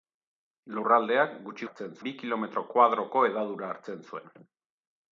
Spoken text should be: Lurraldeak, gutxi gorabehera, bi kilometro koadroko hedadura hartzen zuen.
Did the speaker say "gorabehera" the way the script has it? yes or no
no